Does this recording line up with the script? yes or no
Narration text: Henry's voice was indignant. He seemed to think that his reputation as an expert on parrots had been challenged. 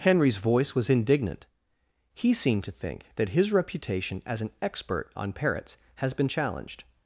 no